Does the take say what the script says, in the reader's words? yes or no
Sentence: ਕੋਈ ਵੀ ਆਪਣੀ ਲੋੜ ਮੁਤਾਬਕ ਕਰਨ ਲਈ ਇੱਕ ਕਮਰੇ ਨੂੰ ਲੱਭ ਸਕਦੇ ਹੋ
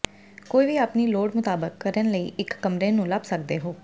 yes